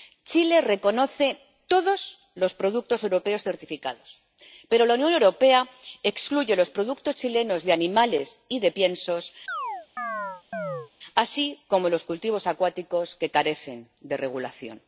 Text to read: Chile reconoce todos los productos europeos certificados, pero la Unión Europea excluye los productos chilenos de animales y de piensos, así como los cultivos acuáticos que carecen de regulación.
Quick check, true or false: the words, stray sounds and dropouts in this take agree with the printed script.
false